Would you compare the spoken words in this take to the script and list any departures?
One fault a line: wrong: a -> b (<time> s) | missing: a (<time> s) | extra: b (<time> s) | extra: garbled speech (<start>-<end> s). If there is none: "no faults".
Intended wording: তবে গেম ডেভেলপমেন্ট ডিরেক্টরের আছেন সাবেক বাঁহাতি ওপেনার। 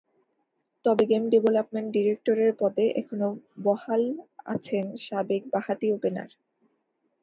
extra: পদে এখনো বহাল (2.6 s)